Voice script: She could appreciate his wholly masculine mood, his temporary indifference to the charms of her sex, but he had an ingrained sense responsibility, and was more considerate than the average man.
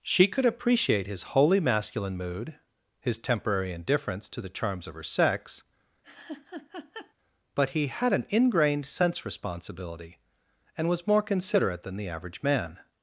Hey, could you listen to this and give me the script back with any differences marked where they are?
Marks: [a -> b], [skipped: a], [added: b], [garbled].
She could appreciate his wholly masculine mood, his temporary indifference to the charms of her sex, but he had an ingrained sense responsibility, and was more considerate than the average man.